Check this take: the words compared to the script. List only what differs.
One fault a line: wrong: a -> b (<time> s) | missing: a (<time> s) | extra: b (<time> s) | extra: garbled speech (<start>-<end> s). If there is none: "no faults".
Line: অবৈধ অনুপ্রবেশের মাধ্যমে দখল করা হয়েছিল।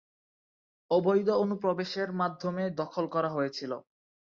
no faults